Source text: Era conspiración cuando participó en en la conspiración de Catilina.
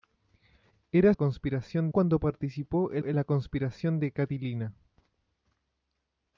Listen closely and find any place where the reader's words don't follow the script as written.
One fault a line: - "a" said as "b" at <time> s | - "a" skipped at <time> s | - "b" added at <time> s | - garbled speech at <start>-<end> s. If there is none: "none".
none